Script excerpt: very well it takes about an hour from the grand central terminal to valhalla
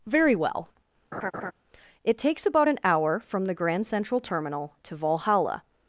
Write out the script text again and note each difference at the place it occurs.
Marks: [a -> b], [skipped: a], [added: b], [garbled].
very well it takes about an hour from the grand central terminal to valhalla